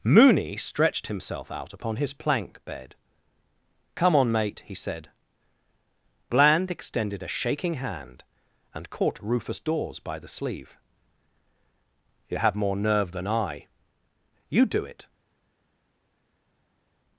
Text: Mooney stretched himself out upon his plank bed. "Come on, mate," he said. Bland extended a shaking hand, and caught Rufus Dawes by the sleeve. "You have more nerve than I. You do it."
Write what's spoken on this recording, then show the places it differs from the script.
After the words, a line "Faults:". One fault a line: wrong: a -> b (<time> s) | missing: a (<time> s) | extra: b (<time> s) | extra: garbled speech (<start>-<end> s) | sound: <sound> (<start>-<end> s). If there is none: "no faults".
Mooney stretched himself out upon his plank bed. "Come on, mate," he said. Bland extended a shaking hand, and caught Rufus Dawes by the sleeve. "You have more nerve than I. You do it."
Faults:
no faults